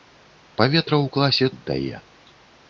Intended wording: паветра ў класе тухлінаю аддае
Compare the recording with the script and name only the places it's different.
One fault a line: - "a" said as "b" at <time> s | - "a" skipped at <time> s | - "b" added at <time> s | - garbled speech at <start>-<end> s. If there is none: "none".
- "тухлінаю" skipped at 1.5 s